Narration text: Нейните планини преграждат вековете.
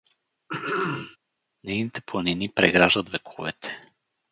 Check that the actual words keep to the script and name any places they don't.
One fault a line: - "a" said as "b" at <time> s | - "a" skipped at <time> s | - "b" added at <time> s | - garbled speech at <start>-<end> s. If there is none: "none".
none